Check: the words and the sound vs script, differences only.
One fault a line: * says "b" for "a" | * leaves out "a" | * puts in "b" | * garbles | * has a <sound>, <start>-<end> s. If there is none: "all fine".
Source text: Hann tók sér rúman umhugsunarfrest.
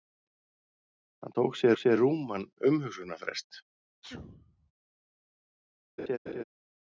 * puts in "sér"
* has a sneeze, 4.0-4.7 s
* has a laugh, 6.0-6.4 s